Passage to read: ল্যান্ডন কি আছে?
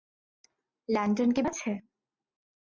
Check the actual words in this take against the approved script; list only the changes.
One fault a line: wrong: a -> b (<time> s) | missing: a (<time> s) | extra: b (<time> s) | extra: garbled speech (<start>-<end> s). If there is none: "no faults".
no faults